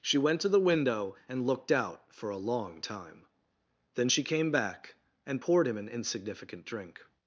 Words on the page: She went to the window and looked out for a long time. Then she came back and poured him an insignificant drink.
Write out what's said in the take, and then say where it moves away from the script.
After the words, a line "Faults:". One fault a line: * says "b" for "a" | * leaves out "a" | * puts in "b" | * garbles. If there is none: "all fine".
She went to the window and looked out for a long time. Then she came back and poured him an insignificant drink.
Faults:
all fine